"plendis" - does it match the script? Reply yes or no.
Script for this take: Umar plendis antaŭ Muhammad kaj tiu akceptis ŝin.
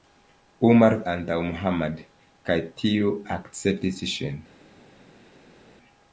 no